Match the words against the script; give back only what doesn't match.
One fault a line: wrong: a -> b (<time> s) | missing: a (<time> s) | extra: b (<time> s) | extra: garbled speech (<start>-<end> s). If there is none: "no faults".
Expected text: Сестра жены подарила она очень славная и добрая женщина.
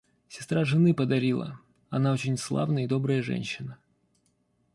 no faults